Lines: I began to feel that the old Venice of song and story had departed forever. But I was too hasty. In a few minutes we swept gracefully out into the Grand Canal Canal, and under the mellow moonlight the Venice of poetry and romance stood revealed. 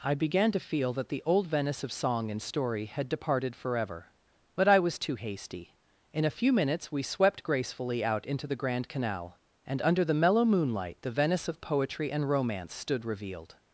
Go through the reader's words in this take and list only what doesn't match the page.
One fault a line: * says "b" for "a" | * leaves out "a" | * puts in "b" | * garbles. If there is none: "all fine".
* leaves out "Canal"